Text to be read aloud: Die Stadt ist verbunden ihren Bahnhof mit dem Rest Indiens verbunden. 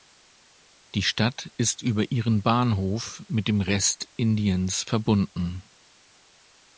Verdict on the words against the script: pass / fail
fail